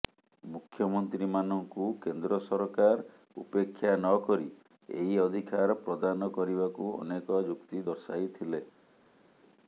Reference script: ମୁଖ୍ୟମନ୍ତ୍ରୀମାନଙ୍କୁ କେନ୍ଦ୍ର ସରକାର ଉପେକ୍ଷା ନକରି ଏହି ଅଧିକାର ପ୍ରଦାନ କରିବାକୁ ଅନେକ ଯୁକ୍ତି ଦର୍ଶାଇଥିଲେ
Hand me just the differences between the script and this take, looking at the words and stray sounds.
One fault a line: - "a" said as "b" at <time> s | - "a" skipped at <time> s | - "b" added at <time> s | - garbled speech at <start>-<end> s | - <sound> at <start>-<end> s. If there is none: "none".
none